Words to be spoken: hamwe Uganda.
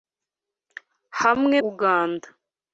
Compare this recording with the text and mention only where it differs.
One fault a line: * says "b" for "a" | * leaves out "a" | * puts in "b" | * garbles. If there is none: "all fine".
all fine